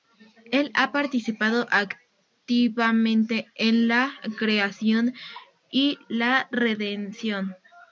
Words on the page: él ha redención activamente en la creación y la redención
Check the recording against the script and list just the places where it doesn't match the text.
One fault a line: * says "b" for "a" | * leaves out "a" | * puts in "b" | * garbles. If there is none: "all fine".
* says "participado" for "redención"